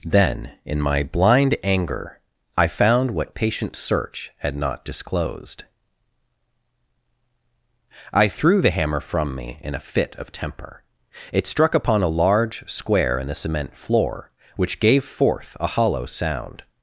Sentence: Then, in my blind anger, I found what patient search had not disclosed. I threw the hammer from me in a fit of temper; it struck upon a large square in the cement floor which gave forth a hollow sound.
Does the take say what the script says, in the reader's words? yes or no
yes